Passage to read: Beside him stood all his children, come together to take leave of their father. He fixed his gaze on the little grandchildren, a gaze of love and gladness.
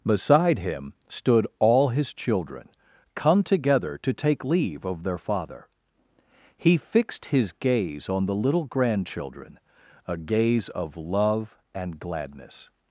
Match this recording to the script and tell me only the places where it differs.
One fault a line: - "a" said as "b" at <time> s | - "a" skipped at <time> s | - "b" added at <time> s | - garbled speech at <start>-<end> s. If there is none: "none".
none